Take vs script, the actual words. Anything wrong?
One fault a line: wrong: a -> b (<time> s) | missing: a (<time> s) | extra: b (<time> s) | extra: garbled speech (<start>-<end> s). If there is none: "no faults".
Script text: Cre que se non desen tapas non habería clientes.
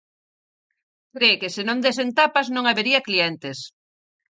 no faults